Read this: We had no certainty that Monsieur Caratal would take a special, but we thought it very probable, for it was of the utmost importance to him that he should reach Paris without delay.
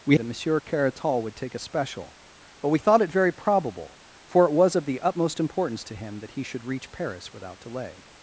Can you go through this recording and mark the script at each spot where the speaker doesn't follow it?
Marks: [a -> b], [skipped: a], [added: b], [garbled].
We [skipped: had no certainty] that Monsieur Caratal would take a special, but we thought it very probable, for it was of the utmost importance to him that he should reach Paris without delay.